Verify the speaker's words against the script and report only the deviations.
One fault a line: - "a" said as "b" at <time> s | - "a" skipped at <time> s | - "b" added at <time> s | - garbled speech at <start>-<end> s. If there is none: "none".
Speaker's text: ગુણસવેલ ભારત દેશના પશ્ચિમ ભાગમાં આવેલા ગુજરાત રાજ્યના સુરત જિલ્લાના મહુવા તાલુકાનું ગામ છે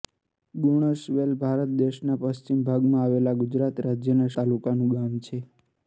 - "સુરત જિલ્લાના મહુવા" skipped at 4.3 s